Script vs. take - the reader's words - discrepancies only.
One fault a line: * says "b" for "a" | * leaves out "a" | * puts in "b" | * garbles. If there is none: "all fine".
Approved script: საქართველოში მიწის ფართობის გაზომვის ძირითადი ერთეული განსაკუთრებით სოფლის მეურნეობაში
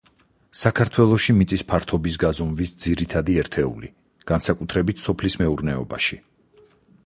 all fine